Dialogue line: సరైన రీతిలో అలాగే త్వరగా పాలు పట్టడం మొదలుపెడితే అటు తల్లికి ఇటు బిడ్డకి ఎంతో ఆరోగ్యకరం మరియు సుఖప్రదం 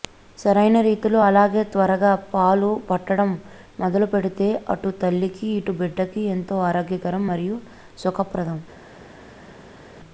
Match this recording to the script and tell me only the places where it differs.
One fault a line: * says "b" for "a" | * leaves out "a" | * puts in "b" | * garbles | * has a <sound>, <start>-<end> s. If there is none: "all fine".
all fine